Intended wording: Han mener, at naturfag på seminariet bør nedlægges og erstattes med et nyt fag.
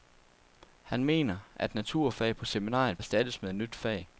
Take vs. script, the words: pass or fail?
fail